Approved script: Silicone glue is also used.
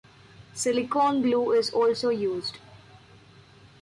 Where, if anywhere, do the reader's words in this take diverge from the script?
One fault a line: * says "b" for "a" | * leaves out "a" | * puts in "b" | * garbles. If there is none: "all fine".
all fine